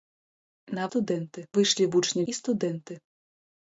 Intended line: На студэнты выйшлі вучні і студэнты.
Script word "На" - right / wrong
right